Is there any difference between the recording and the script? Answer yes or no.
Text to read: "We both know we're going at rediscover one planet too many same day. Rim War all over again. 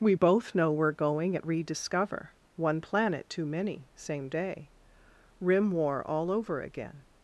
no